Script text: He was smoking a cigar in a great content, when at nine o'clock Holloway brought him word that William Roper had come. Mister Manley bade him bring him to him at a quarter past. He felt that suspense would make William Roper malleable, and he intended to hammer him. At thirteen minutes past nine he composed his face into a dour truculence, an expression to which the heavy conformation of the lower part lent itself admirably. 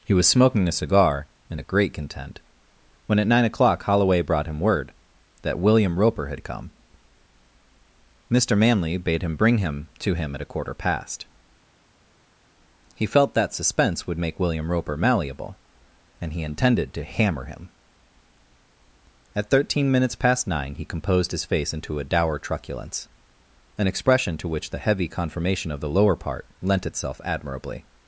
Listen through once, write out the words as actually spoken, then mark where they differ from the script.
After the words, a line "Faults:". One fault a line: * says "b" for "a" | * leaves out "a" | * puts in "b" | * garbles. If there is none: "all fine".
He was smoking a cigar in a great content, when at nine o'clock Holloway brought him word that William Roper had come. Mister Manley bade him bring him to him at a quarter past. He felt that suspense would make William Roper malleable, and he intended to hammer him. At thirteen minutes past nine he composed his face into a dour truculence, an expression to which the heavy conformation of the lower part lent itself admirably.
Faults:
all fine